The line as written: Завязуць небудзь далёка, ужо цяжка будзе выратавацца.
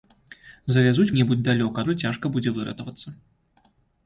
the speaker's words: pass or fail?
pass